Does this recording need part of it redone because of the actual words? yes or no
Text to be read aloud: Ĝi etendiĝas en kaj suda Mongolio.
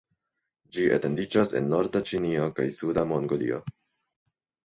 yes